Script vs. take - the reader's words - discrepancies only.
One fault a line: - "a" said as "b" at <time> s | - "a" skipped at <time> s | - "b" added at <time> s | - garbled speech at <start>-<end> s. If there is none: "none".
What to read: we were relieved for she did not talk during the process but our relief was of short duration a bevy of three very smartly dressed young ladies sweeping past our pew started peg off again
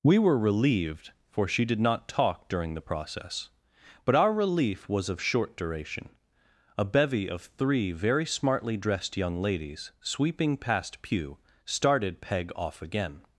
- "our" skipped at 11.0 s